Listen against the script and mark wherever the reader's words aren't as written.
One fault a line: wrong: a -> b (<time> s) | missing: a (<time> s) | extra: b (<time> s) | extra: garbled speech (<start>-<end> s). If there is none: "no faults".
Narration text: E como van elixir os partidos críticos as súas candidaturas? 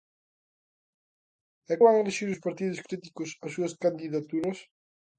missing: como (1.7 s)